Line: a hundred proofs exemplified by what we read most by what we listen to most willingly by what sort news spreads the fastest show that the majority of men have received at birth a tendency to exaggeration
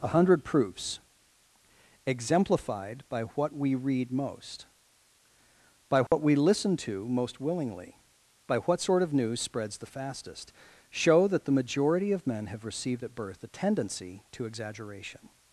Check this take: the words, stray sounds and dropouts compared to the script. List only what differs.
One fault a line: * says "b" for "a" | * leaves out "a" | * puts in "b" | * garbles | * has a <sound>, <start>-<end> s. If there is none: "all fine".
* has a dropout, 6.1-6.1 s
* puts in "of"